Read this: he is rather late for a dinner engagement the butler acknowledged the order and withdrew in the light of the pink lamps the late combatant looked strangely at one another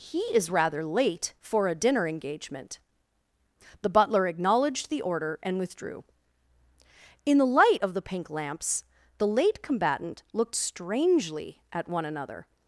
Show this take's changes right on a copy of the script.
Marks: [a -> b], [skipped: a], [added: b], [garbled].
he is rather late for a dinner engagement the butler acknowledged the order and withdrew in the light of the pink lamps the late combatant looked strangely at one another